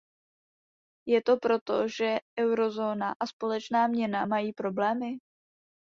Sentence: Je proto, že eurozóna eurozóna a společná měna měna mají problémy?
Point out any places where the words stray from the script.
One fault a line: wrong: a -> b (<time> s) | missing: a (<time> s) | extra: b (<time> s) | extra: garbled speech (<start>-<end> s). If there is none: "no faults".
extra: to (1.2 s)
missing: eurozóna (3.1 s)
missing: měna (4.3 s)